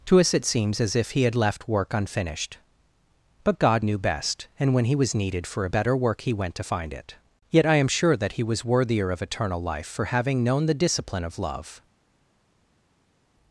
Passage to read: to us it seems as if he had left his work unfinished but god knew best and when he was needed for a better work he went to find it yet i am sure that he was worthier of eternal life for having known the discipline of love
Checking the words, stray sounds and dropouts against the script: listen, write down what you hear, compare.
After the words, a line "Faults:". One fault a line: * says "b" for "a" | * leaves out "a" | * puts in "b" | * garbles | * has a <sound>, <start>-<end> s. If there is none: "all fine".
to us it seems as if he had left work unfinished but god knew best and when he was needed for a better work he went to find it yet i am sure that he was worthier of eternal life for having known the discipline of love
Faults:
* leaves out "his"